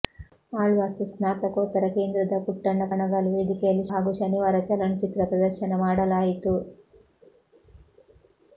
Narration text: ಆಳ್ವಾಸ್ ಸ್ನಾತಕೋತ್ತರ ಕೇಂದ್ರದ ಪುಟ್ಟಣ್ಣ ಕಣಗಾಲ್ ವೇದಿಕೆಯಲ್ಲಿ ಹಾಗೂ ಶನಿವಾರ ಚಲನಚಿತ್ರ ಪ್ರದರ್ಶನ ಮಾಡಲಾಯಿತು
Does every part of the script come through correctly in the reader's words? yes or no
yes